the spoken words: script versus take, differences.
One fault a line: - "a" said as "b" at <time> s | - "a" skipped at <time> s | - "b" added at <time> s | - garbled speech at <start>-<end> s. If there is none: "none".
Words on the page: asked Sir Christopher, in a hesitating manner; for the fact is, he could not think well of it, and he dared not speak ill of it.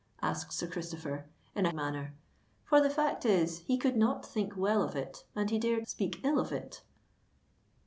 - "hesitating" skipped at 1.7 s
- "not" skipped at 5.9 s